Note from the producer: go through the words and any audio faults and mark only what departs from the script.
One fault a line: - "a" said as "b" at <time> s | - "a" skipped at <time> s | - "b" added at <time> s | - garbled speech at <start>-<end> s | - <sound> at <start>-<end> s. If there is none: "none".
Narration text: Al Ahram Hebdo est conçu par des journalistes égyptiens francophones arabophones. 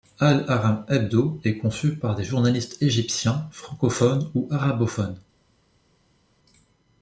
- "ou" added at 4.3 s